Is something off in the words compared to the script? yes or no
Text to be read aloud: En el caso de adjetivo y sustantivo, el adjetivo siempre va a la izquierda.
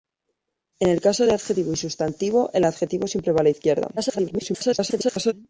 yes